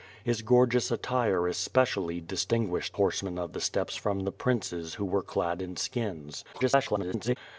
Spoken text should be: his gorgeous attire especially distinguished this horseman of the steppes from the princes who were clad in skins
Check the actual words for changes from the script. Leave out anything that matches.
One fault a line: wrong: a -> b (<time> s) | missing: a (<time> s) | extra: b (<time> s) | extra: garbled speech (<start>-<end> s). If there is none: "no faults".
missing: this (3.0 s)
extra: garbled speech (6.5-7.4 s)